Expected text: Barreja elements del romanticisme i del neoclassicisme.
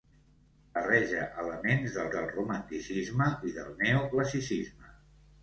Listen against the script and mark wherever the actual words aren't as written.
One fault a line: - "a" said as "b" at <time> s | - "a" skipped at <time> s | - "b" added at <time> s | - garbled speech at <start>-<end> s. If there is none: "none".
- "del" added at 2.1 s